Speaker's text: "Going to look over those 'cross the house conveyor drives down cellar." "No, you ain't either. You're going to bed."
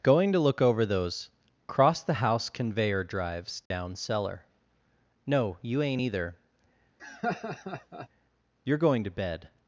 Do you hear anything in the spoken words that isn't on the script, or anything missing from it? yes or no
no